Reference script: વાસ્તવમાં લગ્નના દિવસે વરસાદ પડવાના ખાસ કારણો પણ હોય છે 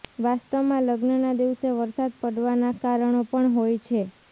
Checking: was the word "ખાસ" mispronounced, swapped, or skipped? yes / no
yes